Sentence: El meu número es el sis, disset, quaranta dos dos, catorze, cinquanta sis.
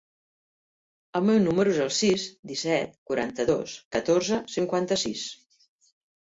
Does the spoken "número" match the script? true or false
true